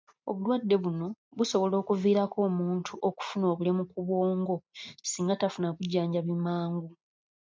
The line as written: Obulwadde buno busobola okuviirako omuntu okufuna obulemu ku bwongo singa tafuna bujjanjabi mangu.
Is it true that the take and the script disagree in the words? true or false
false